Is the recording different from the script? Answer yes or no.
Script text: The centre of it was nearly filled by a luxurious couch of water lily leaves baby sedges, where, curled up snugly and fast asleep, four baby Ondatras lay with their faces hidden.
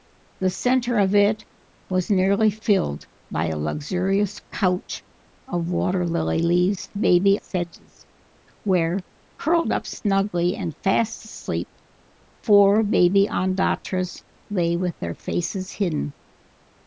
no